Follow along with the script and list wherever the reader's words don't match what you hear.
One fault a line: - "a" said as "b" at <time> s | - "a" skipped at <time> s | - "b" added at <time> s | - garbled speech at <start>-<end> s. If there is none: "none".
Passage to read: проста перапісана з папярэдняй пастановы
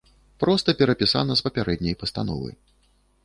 none